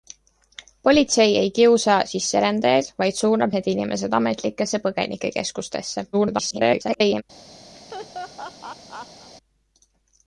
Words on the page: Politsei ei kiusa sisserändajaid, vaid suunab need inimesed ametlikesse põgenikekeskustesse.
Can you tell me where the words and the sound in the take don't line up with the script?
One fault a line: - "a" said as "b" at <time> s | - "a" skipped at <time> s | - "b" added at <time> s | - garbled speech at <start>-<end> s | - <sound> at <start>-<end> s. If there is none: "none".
- garbled speech at 6.1-7.2 s
- laugh at 7.7-9.3 s